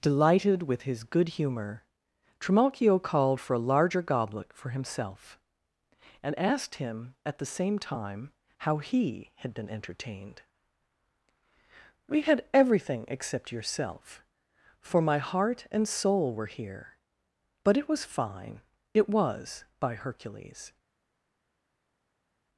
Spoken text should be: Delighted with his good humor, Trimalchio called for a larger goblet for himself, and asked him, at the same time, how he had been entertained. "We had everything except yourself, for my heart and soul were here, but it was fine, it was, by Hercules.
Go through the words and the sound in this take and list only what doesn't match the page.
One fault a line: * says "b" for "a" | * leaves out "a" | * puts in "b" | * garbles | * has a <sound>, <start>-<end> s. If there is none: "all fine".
all fine